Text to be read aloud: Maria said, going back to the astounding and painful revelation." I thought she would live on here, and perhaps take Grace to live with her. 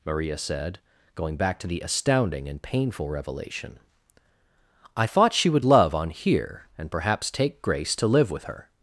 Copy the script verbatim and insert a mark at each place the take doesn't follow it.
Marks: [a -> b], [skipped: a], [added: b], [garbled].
Maria said, going back to the astounding and painful revelation." I thought she would [live -> love] on here, and perhaps take Grace to live with her.